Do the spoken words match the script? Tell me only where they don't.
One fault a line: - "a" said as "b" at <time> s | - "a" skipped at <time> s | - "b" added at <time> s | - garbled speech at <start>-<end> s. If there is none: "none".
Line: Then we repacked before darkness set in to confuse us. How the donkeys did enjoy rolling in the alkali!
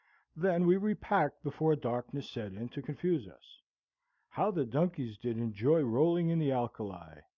none